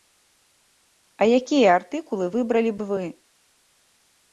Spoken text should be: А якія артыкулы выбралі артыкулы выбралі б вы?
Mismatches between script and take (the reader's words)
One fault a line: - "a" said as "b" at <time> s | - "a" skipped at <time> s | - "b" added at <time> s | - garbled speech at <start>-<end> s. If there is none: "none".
- "артыкулы выбралі" skipped at 2.8 s